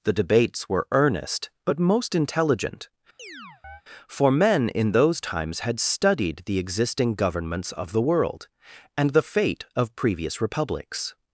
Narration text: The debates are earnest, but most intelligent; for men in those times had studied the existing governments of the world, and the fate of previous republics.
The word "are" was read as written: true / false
false